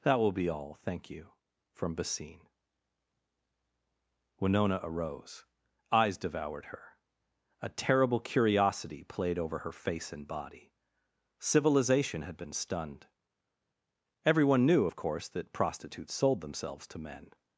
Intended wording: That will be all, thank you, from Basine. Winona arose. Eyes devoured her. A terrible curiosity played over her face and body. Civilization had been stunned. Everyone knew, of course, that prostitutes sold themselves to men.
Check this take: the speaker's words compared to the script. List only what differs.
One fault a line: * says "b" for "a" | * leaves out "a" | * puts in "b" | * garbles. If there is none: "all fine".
all fine